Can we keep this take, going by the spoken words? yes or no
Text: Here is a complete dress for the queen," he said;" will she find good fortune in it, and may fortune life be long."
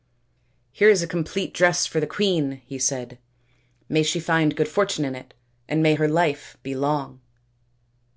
no